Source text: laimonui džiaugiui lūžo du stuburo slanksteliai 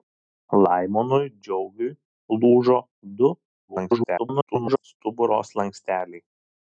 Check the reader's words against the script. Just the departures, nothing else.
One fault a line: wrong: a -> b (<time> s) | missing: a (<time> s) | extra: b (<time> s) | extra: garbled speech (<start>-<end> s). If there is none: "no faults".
extra: garbled speech (3.7-4.8 s)